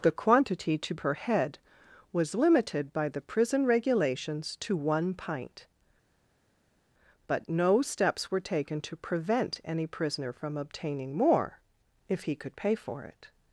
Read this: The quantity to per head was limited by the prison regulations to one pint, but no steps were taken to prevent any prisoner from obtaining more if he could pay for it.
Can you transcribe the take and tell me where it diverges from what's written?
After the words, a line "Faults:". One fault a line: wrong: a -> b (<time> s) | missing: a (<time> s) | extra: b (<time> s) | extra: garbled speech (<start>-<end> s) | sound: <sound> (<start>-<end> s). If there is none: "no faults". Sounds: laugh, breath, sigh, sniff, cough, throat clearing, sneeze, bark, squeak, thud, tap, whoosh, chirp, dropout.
The quantity to per head was limited by the prison regulations to one pint, but no steps were taken to prevent any prisoner from obtaining more if he could pay for it.
Faults:
no faults